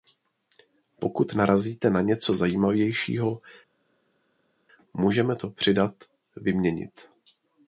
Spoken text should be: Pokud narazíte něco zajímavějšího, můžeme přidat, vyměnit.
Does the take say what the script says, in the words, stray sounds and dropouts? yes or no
no